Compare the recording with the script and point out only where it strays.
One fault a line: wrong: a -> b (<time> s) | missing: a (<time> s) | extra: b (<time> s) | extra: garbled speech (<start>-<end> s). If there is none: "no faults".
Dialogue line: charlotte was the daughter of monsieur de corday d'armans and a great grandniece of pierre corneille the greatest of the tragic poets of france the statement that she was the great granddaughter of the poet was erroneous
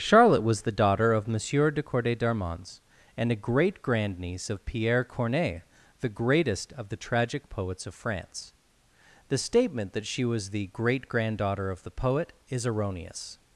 wrong: was -> is (12.5 s)